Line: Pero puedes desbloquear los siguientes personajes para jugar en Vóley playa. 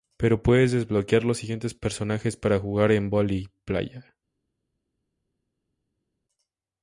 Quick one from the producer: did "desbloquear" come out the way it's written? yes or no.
yes